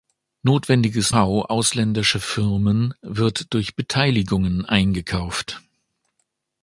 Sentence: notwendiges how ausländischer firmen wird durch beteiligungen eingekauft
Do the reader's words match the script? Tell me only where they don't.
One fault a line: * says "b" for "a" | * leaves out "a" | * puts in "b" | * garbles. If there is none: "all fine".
all fine